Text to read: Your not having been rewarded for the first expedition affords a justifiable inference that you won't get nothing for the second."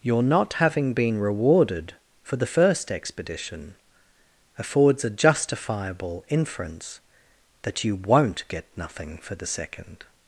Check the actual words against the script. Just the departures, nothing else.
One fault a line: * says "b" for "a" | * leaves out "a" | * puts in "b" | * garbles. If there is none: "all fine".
all fine